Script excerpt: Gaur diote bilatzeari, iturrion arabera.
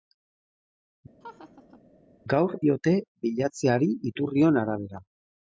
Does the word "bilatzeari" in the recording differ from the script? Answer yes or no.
no